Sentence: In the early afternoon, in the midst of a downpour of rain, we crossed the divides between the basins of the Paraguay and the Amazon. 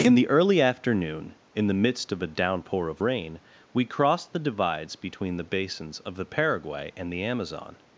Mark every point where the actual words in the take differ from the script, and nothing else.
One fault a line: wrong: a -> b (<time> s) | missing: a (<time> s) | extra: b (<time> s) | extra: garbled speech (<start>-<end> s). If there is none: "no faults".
no faults